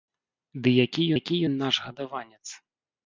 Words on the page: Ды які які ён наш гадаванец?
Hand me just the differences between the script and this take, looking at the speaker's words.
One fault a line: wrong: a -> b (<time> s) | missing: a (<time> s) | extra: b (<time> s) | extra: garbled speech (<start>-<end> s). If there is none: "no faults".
no faults